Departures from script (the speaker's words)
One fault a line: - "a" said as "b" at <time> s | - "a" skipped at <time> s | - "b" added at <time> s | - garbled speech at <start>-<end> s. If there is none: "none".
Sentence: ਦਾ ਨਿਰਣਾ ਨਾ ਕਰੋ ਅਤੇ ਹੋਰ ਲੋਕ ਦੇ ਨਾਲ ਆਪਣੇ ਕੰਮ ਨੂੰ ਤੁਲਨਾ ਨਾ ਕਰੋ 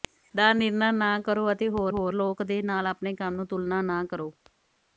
- "ਹੋਰ" added at 1.9 s